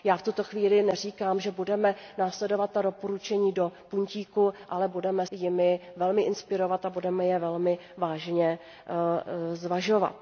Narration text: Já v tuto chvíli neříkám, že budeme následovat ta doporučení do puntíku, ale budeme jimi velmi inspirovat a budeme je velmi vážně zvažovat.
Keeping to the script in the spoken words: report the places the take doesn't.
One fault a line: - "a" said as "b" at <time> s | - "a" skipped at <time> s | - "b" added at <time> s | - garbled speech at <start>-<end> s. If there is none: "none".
none